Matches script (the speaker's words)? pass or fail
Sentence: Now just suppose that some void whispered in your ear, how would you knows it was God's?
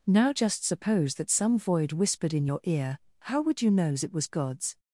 pass